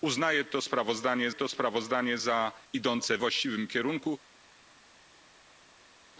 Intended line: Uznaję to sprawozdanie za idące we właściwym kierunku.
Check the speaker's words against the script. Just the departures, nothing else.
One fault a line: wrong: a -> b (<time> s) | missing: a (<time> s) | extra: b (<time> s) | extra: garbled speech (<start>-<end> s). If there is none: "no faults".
extra: to sprawozdanie (1.3 s)
missing: we (3.2 s)